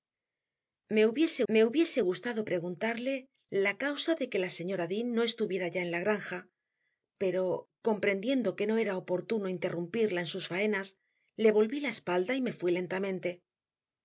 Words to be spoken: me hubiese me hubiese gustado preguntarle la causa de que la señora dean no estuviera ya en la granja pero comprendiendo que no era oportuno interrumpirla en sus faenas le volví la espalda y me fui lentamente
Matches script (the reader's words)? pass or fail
pass